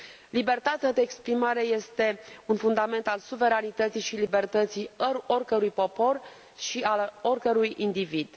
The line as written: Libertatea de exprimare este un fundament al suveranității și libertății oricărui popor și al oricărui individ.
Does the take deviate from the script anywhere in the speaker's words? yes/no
no